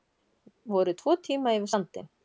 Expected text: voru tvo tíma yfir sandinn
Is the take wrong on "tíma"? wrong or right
right